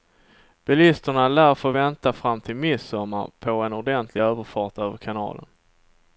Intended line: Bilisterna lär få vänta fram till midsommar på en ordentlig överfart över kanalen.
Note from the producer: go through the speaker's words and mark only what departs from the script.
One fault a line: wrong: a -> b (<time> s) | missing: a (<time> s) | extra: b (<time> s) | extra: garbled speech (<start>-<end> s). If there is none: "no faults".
no faults